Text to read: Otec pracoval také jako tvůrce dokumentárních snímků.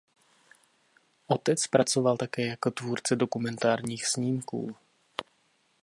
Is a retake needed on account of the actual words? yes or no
no